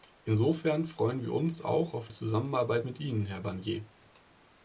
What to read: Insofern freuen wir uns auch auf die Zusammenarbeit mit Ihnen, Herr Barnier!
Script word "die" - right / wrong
wrong